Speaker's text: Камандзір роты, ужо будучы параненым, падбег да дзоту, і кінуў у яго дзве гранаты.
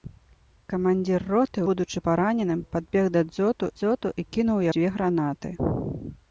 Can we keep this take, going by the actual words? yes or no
no